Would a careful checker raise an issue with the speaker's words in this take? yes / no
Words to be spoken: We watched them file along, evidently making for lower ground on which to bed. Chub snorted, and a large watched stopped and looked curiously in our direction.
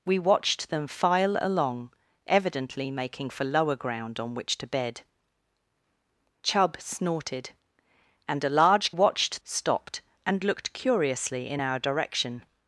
no